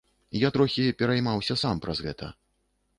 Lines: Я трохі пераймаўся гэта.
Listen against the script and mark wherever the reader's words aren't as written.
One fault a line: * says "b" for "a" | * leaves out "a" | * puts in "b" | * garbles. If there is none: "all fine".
* puts in "сам праз"